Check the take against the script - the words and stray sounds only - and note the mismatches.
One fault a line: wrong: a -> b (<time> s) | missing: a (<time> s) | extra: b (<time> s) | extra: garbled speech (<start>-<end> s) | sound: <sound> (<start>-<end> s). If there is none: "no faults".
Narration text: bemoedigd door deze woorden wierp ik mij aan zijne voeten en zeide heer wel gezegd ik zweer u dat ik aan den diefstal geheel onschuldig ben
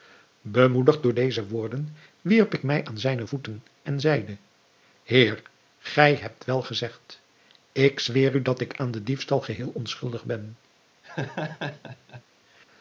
extra: gij hebt (5.8 s)
sound: laugh (11.0-12.2 s)